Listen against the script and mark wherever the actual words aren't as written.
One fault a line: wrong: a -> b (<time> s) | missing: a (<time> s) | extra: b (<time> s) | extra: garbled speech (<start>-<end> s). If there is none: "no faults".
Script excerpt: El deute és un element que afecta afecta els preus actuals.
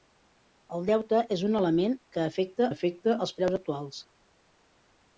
no faults